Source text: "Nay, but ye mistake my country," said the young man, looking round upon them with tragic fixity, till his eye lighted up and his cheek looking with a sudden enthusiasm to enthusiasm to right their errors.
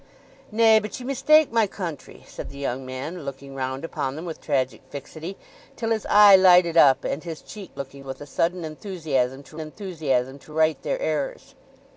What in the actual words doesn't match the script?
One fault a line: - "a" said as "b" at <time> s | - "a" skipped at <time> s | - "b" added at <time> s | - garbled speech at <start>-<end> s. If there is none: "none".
none